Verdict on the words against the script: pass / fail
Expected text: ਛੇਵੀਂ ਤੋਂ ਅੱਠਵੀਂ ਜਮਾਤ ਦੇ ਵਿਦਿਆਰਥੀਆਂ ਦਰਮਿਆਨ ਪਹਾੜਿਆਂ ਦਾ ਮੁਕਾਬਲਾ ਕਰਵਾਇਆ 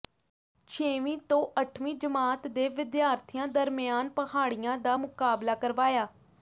pass